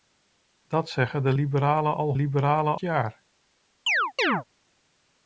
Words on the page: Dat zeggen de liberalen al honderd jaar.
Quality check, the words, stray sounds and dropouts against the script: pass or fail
fail